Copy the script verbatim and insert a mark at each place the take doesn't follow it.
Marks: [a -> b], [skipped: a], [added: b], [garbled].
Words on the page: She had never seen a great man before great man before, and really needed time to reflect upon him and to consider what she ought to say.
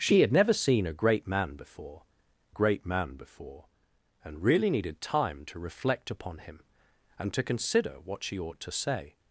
She had never seen a great man before great man before, and really needed time to reflect upon him and to consider what she ought to say.